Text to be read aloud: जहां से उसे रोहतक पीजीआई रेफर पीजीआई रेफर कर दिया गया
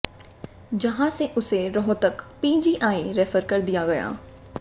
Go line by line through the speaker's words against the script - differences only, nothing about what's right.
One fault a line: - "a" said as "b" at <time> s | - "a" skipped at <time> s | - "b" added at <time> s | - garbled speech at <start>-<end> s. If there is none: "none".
- "पीजीआई रेफर" skipped at 3.4 s